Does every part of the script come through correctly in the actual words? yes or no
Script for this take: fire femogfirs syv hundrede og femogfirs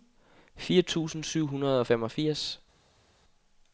no